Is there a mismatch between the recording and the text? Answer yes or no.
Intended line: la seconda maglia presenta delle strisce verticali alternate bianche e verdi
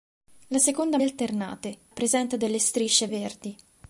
yes